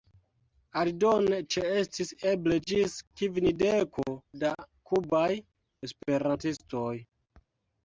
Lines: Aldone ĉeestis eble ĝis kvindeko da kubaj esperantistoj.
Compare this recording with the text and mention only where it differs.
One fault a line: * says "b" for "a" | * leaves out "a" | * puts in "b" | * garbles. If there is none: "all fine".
all fine